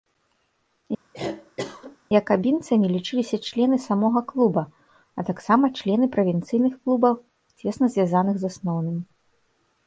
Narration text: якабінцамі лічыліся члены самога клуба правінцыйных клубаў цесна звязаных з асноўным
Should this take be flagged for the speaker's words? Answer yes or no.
yes